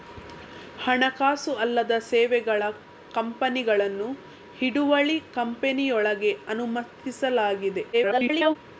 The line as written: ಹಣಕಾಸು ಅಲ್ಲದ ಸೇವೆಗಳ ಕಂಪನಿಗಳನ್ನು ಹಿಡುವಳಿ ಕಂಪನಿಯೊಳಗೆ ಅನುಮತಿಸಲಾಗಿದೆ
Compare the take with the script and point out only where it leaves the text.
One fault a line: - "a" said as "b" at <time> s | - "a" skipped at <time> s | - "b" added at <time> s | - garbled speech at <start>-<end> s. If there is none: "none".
- garbled speech at 7.9-8.6 s